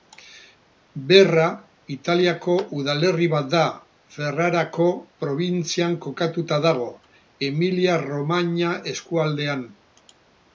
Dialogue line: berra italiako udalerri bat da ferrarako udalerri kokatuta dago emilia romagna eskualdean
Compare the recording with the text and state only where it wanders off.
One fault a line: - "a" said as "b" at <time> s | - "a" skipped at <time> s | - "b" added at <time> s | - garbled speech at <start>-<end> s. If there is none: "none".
- "udalerri" said as "probintzian" at 5.2 s